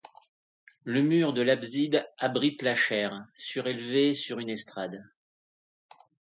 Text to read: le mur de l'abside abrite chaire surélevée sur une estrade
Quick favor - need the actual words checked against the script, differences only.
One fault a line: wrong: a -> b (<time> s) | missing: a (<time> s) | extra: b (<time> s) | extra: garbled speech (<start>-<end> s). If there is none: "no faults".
extra: la (2.6 s)